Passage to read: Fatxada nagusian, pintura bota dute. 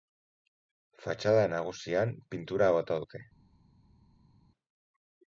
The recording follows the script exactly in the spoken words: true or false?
true